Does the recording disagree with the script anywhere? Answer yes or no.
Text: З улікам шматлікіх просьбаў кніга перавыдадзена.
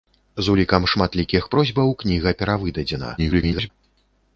yes